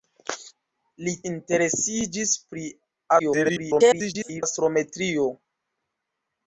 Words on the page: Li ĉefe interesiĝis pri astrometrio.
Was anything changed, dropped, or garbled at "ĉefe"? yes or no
yes